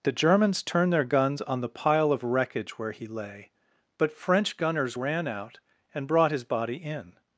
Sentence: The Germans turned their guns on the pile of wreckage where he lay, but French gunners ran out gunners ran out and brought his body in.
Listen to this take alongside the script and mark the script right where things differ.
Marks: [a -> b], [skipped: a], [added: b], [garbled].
The Germans turned their guns on the pile of wreckage where he lay, but French gunners ran out [skipped: gunners ran out] and brought his body in.